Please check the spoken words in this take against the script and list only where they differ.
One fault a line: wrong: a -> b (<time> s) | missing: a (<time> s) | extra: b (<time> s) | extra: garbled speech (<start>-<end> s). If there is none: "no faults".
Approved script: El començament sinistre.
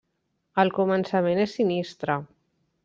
extra: és (1.4 s)